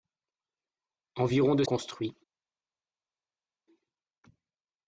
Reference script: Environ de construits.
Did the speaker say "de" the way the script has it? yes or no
yes